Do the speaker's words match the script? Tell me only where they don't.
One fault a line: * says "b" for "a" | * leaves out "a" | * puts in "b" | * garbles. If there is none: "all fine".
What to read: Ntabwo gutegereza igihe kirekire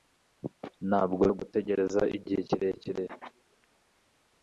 all fine